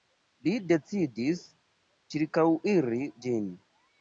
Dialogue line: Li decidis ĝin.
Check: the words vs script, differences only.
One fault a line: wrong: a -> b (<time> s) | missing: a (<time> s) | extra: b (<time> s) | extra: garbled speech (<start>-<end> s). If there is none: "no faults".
extra: ĉirkaŭiri (2.2 s)